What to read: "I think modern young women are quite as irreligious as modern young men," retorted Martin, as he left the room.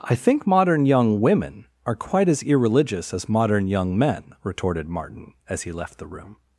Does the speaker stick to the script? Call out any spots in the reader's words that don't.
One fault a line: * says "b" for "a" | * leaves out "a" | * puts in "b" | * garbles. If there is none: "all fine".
all fine